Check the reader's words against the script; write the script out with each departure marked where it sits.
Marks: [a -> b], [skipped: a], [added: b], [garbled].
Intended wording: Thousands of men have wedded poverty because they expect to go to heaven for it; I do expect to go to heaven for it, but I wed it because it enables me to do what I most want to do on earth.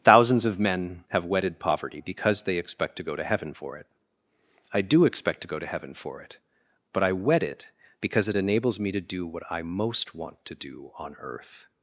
Thousands of men have wedded poverty because they expect to go to heaven for it; I do expect to go to heaven for it, but I wed it because it enables me to do what I most want to do on earth.